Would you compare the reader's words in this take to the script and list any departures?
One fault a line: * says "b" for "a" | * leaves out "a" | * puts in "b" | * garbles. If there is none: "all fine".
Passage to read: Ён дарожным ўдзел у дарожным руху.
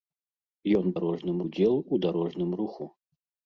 all fine